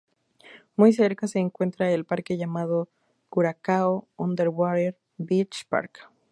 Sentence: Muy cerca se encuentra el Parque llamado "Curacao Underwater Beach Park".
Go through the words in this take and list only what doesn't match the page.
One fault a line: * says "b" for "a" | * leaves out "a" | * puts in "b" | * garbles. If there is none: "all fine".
all fine